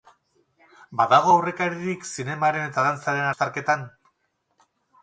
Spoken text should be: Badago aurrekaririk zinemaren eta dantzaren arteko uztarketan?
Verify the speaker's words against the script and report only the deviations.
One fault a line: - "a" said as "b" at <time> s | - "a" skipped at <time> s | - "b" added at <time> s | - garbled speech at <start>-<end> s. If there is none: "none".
- "arteko" skipped at 3.3 s